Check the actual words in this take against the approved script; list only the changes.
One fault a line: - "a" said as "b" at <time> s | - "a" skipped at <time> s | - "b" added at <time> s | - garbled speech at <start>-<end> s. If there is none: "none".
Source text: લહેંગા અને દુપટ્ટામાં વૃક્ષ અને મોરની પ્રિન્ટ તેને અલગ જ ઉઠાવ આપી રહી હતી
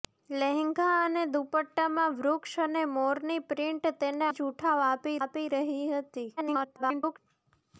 - "અલગ" skipped at 4.3 s
- "આપી" added at 5.2 s
- garbled speech at 6.4-7.2 s